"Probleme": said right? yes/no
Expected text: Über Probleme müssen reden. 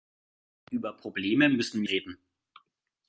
yes